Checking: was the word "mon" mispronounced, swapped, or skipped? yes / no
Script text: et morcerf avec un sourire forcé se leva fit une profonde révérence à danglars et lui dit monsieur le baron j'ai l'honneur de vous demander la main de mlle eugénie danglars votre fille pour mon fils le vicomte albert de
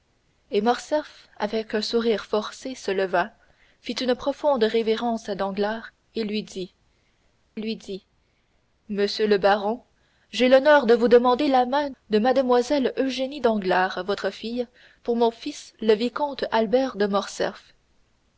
no